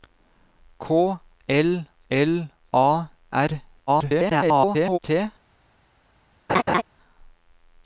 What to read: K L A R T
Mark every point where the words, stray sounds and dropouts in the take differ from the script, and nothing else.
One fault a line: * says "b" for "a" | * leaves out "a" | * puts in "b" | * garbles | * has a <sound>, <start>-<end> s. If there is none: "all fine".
* puts in "L"
* garbles
* has a laugh, 6.5-6.8 s